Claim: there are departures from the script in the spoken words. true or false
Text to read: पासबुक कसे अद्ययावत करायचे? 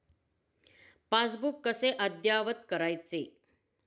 false